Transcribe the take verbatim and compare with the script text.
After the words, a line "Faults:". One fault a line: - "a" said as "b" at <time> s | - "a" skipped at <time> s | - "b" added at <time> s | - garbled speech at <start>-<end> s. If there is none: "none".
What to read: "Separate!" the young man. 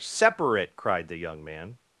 "Separate!" cried the young man.
Faults:
- "cried" added at 0.8 s